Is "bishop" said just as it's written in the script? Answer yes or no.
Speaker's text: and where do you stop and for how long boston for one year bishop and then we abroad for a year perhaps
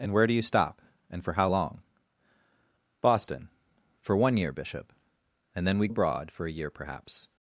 yes